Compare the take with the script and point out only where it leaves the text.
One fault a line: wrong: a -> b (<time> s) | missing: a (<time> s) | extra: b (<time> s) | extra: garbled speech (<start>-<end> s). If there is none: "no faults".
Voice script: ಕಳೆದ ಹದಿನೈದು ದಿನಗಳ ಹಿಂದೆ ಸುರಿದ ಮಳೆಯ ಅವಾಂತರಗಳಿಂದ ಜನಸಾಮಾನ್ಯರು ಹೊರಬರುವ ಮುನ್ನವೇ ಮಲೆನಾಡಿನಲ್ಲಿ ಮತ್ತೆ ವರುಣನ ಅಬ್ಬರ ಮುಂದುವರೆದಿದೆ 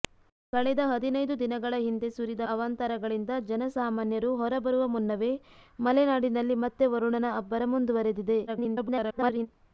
missing: ಮಳೆಯ (2.4 s)
extra: garbled speech (8.5-9.5 s)